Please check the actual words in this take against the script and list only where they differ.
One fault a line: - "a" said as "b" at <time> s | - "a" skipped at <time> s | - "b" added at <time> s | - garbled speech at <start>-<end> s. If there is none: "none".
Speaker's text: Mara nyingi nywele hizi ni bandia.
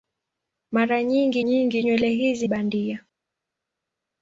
- "nyingi" added at 1.4 s
- "ni" skipped at 2.5 s